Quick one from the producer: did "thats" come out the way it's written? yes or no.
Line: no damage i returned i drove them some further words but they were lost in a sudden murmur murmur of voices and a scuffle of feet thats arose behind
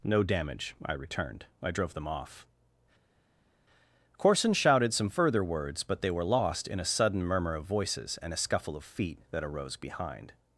no